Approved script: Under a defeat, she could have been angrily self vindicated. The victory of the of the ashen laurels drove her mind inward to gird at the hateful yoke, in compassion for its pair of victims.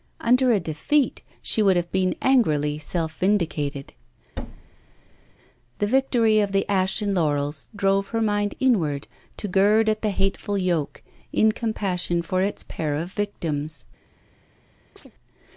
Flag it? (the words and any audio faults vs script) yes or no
yes